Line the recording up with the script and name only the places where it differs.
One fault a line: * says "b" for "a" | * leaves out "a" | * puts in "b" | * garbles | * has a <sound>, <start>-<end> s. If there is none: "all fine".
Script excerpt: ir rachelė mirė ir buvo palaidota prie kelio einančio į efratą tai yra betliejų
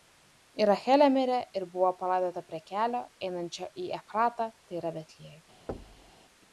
* has a thud, 5.7-6.1 s